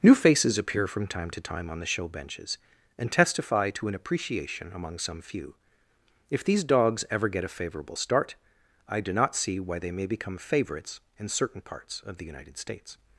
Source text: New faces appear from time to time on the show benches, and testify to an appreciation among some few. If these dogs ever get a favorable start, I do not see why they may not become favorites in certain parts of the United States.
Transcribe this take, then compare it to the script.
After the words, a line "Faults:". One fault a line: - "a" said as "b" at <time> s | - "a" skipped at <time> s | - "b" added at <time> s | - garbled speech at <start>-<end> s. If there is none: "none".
New faces appear from time to time on the show benches, and testify to an appreciation among some few. If these dogs ever get a favorable start, I do not see why they may become favorites in certain parts of the United States.
Faults:
- "not" skipped at 10.1 s